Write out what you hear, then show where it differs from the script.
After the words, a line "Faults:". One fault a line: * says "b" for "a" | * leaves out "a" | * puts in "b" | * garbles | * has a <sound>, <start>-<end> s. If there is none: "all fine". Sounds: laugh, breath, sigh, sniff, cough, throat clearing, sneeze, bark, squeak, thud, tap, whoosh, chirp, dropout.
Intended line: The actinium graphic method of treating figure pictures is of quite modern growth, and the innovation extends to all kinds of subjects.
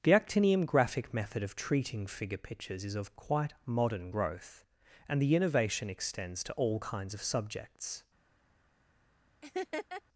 The actinium graphic method of treating figure pictures is of quite modern growth, and the innovation extends to all kinds of subjects.
Faults:
* has a laugh, 9.4-10.0 s